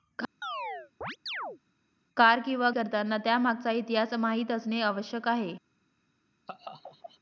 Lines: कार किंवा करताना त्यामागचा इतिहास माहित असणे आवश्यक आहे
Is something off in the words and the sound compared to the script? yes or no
yes